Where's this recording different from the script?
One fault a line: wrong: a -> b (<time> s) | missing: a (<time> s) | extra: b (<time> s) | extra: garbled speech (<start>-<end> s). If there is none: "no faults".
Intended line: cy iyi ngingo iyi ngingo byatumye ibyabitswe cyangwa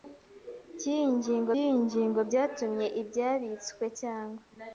no faults